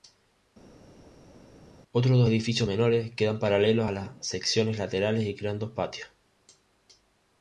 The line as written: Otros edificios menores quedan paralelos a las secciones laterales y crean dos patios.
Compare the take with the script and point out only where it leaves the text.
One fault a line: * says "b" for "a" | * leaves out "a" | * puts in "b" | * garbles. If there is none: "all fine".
* puts in "dos"